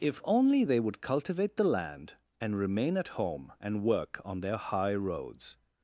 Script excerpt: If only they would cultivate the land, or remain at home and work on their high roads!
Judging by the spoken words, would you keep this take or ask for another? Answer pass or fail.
fail